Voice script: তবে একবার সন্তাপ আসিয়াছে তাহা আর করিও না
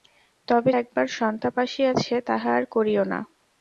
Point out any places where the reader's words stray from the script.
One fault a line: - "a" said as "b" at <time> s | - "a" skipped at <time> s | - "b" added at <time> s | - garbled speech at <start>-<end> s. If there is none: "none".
none